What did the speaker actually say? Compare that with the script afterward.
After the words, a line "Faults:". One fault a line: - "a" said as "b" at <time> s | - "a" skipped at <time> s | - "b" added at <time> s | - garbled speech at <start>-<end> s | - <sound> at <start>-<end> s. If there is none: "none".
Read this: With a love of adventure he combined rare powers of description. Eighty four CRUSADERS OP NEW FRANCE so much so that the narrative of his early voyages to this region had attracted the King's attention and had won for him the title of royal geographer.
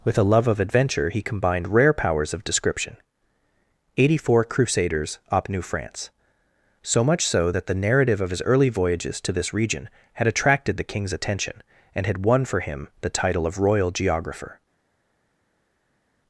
With a love of adventure he combined rare powers of description. Eighty four CRUSADERS OP NEW FRANCE so much so that the narrative of his early voyages to this region had attracted the King's attention and had won for him the title of royal geographer.
Faults:
none